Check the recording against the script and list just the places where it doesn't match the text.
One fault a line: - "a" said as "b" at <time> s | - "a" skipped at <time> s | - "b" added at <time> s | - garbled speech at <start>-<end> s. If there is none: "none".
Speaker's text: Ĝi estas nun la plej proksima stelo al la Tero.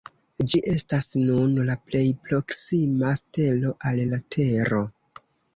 none